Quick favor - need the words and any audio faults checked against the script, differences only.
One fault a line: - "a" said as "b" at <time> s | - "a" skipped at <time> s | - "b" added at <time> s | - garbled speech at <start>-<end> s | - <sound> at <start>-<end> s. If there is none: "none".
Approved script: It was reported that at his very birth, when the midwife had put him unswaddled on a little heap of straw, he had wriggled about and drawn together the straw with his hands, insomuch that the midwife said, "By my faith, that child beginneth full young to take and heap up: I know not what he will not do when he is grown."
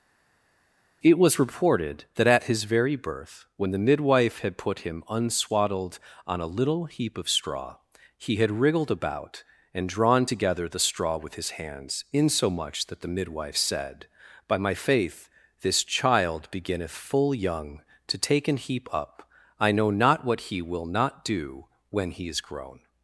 - "that" said as "this" at 15.6 s